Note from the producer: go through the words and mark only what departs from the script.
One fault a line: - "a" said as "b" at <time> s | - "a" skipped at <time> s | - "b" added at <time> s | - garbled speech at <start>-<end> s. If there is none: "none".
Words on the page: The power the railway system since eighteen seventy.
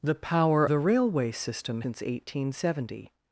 none